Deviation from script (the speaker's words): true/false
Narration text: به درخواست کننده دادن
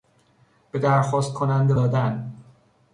false